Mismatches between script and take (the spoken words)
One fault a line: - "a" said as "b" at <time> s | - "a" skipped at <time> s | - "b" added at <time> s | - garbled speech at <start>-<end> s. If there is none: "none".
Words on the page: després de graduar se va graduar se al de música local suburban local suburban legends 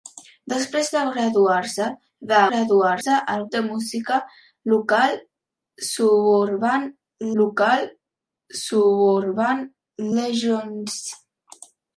none